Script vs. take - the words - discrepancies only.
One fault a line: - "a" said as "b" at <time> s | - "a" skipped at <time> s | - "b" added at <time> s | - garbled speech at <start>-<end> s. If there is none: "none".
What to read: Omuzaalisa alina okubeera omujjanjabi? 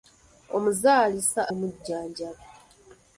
- "alina okubeera" skipped at 1.4 s